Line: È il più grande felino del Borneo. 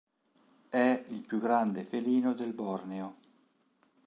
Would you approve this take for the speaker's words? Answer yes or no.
yes